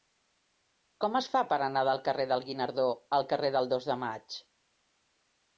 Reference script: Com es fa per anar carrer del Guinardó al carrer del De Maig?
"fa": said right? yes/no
yes